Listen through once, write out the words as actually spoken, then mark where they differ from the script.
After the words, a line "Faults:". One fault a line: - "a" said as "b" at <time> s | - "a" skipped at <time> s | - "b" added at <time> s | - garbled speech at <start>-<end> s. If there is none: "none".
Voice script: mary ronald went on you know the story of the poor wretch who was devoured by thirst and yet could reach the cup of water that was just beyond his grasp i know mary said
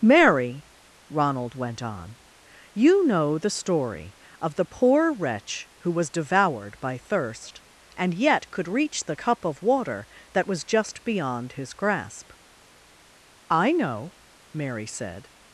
mary ronald went on you know the story of the poor wretch who was devoured by thirst and yet could reach the cup of water that was just beyond his grasp i know mary said
Faults:
none